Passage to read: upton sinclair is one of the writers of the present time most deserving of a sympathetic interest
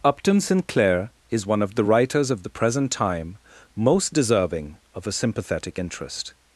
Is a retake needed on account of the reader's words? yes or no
no